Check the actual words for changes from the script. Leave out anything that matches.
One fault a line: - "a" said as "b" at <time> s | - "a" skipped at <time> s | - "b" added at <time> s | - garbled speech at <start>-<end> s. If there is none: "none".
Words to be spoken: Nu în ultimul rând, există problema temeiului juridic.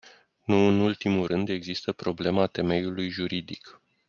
none